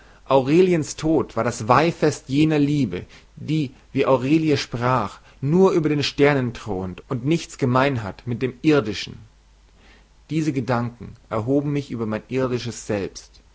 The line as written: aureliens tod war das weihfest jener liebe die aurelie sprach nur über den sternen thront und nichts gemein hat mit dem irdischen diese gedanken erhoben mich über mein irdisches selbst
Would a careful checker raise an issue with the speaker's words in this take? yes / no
yes